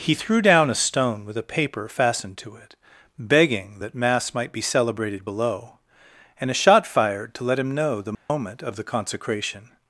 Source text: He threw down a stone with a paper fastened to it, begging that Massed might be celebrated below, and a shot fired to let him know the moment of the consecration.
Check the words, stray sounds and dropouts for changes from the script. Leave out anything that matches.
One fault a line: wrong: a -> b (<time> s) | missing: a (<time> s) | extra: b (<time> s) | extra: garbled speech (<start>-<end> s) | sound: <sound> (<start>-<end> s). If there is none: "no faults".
wrong: Massed -> Mass (3.9 s)
sound: dropout (8.1-8.3 s)